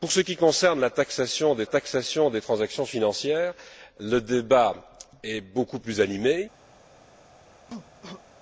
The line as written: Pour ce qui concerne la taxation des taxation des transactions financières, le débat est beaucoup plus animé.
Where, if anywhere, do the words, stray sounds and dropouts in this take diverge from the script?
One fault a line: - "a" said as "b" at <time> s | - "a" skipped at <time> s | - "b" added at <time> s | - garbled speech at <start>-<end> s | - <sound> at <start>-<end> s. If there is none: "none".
- cough at 7.7-8.2 s